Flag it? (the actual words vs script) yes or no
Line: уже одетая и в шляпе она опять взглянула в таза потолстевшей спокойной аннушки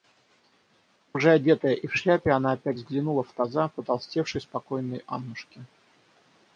no